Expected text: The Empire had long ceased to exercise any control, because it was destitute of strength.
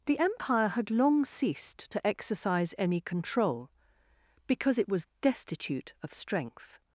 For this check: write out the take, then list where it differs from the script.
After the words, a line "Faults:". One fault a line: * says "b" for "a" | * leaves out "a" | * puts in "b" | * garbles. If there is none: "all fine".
The Empire had long ceased to exercise any control, because it was destitute of strength.
Faults:
all fine